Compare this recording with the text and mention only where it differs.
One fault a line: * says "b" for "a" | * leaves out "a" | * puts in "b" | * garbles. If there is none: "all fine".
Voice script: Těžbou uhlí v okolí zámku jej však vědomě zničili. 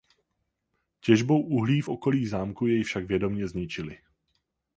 all fine